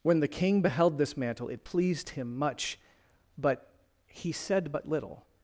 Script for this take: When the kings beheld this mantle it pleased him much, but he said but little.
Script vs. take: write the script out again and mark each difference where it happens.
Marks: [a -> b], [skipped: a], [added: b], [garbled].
When the [kings -> king] beheld this mantle it pleased him much, but he said but little.